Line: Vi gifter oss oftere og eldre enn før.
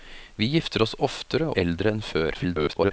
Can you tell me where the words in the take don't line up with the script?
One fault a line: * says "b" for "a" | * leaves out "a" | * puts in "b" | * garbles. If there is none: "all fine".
* leaves out "og"
* garbles